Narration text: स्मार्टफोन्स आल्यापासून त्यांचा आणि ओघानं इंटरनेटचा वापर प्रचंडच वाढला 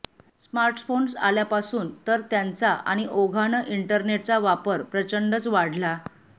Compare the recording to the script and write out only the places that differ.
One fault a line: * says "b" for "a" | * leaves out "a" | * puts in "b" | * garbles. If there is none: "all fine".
* puts in "तर"